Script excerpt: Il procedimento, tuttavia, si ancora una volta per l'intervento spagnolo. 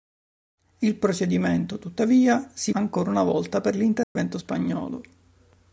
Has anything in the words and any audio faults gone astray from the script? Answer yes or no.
yes